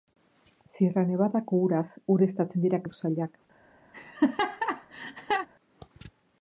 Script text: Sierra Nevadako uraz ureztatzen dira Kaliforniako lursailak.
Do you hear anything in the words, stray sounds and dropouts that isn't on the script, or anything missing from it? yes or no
yes